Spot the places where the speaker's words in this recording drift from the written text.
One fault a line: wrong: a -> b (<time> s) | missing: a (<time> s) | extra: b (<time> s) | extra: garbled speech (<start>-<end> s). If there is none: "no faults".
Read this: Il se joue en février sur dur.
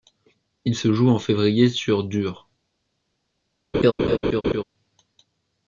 no faults